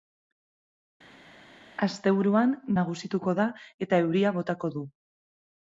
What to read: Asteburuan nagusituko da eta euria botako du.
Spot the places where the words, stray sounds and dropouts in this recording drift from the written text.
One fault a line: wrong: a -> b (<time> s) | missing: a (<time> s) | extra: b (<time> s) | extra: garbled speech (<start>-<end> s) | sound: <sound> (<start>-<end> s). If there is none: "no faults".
no faults